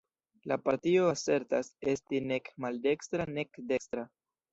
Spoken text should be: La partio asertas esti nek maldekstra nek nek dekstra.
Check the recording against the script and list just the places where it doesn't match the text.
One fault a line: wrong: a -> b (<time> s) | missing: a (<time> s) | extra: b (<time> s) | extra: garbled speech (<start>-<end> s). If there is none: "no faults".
missing: nek (3.6 s)